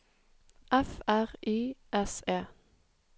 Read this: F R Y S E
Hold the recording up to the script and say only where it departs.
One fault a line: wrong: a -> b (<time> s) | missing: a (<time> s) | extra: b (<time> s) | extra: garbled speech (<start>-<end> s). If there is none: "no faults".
no faults